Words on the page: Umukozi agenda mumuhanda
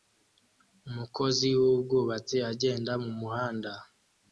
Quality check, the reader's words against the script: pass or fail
fail